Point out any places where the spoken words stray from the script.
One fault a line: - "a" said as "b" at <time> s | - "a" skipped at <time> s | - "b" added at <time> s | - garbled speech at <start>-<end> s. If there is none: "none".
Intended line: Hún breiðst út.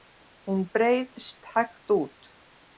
- "hægt" added at 1.6 s